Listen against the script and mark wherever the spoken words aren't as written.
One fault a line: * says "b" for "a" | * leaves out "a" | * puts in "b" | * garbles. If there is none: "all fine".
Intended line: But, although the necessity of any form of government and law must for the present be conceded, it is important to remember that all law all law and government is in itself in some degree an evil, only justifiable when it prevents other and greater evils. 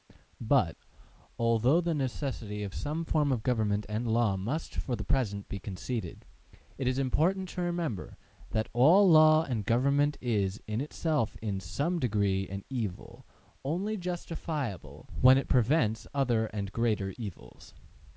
* says "some" for "any"
* leaves out "all law"